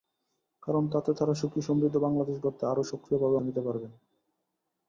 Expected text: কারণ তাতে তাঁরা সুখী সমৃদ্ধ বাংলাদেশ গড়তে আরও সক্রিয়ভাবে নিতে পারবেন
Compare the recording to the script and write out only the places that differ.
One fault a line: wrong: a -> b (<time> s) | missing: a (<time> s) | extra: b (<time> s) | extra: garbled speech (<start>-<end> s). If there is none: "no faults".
no faults